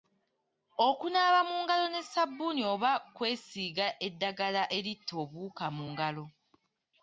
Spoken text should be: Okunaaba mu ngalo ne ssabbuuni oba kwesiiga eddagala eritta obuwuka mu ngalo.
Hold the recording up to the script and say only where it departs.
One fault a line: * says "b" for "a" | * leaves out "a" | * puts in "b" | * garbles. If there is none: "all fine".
all fine